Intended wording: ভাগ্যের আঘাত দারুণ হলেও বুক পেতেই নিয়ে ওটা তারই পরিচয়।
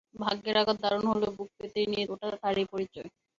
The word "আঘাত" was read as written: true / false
true